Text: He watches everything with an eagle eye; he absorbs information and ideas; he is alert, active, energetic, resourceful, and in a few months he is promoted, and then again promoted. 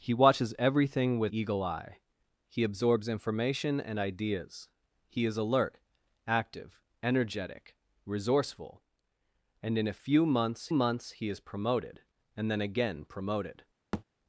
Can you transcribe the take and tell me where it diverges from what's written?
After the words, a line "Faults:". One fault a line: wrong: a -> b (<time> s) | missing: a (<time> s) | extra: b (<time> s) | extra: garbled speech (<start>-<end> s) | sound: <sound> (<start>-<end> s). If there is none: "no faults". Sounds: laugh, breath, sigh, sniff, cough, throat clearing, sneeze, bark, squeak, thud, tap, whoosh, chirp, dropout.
He watches everything with eagle eye; he absorbs information and ideas; he is alert, active, energetic, resourceful, and in a few months months he is promoted, and then again promoted.
Faults:
missing: an (1.3 s)
extra: months (10.7 s)
sound: thud (13.9-14.0 s)